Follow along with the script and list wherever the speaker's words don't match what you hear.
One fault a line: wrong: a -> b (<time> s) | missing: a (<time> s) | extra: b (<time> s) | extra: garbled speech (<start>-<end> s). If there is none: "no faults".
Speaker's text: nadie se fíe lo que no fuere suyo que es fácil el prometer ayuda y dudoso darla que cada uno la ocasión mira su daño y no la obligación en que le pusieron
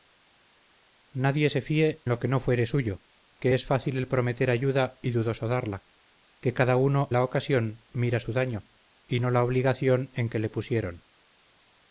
no faults